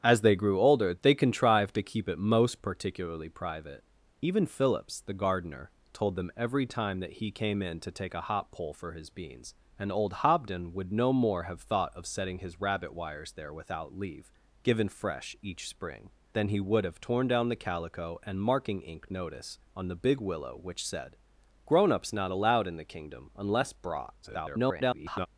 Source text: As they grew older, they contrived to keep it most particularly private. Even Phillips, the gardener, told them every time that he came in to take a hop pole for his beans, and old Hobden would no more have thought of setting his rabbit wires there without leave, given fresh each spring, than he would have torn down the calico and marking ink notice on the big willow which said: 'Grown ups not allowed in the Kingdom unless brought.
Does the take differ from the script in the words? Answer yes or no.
yes